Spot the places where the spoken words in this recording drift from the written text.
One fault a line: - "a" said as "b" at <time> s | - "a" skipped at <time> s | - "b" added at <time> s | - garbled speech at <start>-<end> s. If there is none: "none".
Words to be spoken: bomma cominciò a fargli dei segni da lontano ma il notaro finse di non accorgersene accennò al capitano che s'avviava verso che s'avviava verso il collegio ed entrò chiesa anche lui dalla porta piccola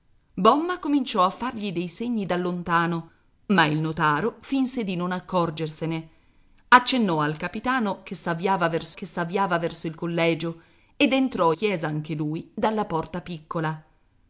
none